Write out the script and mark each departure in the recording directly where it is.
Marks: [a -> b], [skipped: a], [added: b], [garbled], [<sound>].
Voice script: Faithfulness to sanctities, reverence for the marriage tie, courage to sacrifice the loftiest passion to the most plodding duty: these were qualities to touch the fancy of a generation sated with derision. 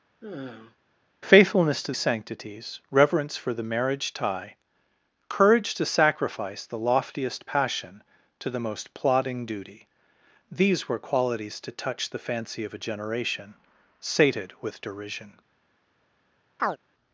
[sigh] Faithfulness to sanctities, reverence for the marriage tie, courage to sacrifice the loftiest passion to the most plodding duty: these were qualities to touch the fancy of a generation sated with derision. [chirp]